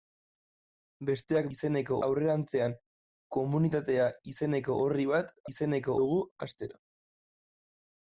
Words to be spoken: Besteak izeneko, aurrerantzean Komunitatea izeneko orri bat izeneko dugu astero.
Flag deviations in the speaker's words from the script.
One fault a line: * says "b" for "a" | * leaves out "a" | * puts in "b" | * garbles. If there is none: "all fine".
all fine